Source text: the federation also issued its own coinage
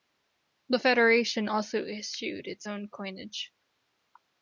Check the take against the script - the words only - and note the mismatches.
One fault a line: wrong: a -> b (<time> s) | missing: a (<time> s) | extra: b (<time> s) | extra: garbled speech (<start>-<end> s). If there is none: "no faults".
no faults